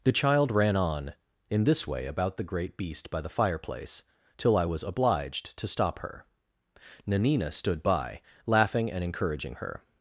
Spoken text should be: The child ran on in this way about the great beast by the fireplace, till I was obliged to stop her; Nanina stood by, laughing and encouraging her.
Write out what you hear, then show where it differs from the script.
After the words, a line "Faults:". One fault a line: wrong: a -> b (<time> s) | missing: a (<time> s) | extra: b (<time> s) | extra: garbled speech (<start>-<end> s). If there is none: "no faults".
The child ran on in this way about the great beast by the fireplace, till I was obliged to stop her; Nanina stood by, laughing and encouraging her.
Faults:
no faults